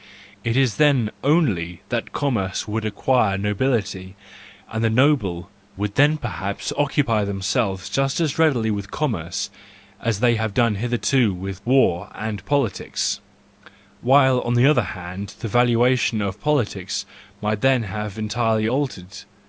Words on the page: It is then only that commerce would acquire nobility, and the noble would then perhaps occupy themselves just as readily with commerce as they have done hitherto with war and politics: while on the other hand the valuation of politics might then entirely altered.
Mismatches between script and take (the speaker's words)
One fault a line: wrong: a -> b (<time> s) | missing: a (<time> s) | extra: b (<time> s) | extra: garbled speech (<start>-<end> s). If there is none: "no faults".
extra: have (17.8 s)